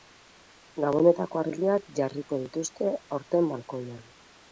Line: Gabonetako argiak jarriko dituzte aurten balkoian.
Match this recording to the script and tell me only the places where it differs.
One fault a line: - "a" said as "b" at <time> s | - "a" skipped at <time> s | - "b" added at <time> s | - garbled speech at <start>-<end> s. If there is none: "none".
none